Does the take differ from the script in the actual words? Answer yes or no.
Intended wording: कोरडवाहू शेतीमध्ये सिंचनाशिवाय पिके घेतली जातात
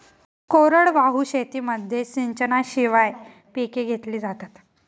no